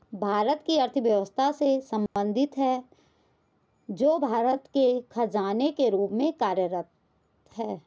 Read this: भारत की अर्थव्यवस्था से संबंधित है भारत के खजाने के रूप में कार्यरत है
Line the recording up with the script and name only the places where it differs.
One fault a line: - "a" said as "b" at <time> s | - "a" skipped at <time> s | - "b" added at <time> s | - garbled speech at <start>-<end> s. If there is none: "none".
- "जो" added at 3.9 s